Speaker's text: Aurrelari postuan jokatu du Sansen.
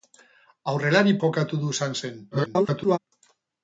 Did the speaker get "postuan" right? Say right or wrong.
wrong